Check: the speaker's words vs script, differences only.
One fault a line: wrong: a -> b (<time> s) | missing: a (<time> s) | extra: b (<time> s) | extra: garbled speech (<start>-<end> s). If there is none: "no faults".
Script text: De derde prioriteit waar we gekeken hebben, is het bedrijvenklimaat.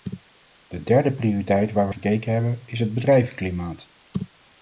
no faults